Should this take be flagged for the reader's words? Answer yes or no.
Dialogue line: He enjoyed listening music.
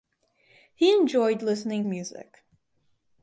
no